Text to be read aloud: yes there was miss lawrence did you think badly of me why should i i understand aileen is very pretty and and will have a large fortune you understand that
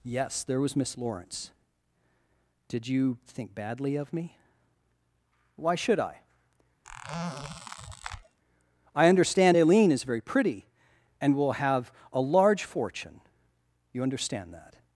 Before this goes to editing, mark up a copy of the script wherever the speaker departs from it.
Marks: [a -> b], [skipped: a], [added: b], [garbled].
yes there was miss lawrence did you think badly of me why should i i understand aileen is very pretty and [skipped: and] will have a large fortune you understand that